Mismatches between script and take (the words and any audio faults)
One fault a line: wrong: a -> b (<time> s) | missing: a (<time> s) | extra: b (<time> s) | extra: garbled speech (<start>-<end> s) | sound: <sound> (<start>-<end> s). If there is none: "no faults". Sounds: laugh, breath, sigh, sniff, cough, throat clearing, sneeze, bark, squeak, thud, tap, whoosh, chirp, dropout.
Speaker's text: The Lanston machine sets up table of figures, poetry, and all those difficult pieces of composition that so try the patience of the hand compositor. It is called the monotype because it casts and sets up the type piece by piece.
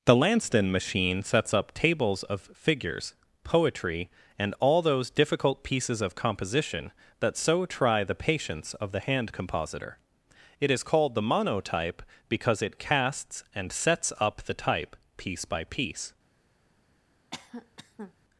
wrong: table -> tables (1.8 s)
sound: cough (17.3-18.1 s)